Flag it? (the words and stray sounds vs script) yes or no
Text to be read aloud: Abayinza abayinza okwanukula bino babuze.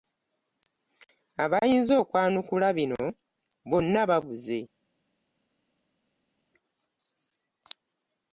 yes